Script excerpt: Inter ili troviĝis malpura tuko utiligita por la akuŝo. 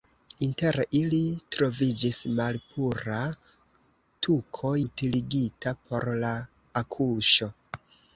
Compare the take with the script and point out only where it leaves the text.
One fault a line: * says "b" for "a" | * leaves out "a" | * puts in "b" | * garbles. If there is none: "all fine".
all fine